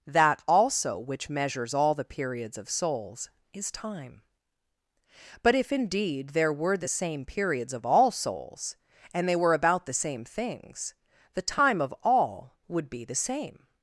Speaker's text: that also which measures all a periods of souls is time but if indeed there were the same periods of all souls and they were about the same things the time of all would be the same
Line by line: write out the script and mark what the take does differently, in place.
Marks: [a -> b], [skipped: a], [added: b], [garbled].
that also which measures all [a -> the] periods of souls is time but if indeed there were the same periods of all souls and they were about the same things the time of all would be the same